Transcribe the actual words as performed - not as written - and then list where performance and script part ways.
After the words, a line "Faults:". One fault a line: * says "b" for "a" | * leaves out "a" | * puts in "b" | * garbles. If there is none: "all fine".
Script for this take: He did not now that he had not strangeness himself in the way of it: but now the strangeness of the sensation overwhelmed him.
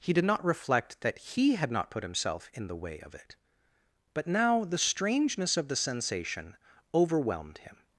He did not reflect that he had not put himself in the way of it: but now the strangeness of the sensation overwhelmed him.
Faults:
* says "reflect" for "now"
* says "put" for "strangeness"